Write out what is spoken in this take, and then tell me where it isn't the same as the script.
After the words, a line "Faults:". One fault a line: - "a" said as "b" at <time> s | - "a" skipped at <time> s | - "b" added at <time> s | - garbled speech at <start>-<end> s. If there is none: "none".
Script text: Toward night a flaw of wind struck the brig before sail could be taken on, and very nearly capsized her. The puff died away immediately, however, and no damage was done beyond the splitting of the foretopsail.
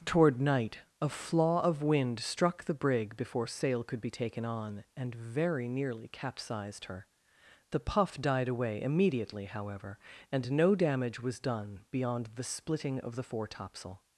Toward night a flaw of wind struck the brig before sail could be taken on, and very nearly capsized her. The puff died away immediately, however, and no damage was done beyond the splitting of the foretopsail.
Faults:
none